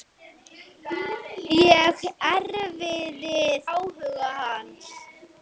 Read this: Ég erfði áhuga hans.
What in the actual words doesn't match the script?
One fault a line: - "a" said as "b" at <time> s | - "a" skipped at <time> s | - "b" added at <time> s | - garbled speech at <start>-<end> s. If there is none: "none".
none